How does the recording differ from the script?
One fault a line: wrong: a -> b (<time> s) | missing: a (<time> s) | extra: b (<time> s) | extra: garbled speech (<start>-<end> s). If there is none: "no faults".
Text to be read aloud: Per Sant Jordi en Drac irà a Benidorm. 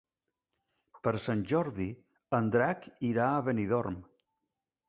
no faults